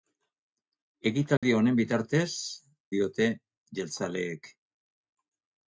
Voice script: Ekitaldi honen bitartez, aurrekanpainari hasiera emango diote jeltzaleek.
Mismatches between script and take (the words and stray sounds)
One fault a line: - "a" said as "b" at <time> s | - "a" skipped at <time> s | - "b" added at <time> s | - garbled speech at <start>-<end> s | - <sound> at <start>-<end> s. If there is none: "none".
- dropout at 1.4-1.4 s
- "aurrekanpainari hasiera emango" skipped at 2.3 s